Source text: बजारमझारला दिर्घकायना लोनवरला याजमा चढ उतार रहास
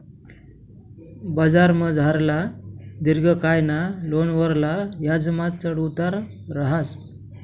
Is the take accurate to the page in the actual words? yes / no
yes